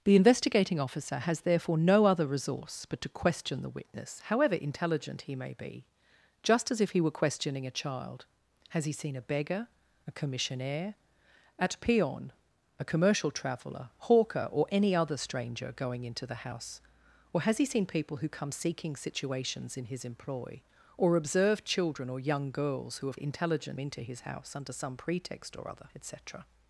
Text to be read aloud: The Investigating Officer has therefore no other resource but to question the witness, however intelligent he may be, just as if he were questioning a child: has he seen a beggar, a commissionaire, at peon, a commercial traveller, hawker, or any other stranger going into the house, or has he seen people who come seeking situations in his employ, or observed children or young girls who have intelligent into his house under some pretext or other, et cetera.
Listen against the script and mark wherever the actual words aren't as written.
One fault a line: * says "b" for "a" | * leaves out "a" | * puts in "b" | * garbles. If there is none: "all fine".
all fine